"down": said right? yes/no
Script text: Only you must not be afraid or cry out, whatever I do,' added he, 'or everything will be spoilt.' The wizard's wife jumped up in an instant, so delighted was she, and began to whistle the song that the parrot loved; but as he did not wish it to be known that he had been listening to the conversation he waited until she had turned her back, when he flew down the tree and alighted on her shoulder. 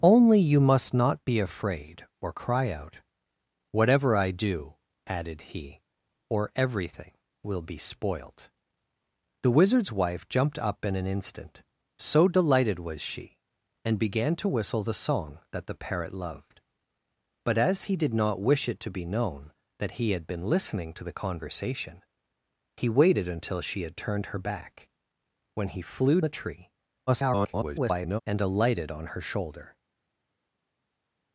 no